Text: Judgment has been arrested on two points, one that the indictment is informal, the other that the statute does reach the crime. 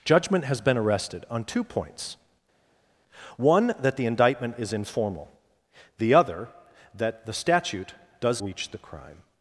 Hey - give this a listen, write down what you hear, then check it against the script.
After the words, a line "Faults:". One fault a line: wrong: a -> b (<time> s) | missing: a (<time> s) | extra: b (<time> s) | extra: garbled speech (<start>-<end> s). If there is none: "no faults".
Judgment has been arrested on two points, one that the indictment is informal, the other that the statute does reach the crime.
Faults:
no faults